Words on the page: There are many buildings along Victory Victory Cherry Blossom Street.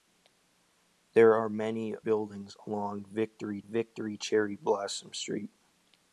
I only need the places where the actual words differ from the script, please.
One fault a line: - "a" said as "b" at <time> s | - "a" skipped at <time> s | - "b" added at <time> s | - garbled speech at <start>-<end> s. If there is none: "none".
none